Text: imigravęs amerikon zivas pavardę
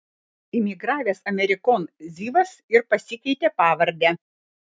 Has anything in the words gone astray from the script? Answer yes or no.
yes